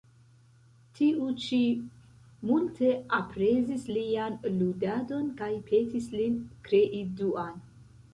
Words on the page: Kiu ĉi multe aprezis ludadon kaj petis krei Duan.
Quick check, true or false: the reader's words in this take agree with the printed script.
false